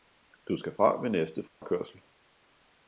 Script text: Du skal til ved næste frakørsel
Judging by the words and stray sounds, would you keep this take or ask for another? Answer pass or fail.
fail